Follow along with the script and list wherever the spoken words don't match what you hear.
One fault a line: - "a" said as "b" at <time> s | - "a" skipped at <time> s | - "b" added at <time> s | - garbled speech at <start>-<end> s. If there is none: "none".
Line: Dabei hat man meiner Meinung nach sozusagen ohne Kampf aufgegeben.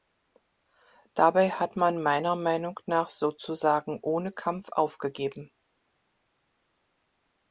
none